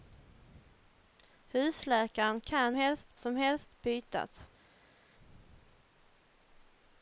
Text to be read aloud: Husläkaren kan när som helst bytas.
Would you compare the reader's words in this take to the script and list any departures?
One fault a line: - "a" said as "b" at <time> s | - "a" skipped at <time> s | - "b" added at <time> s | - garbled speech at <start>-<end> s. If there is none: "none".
- "när" said as "helst" at 2.7 s